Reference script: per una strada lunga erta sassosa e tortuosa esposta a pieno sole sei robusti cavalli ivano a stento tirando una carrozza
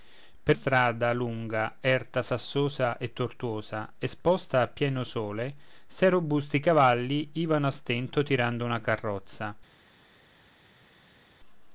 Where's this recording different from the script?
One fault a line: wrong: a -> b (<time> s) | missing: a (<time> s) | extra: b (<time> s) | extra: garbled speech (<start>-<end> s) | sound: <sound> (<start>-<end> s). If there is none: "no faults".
missing: una (0.6 s)